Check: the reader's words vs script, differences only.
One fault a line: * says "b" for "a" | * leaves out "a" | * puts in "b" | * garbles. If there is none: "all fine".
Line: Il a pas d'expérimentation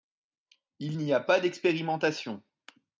* puts in "n'y"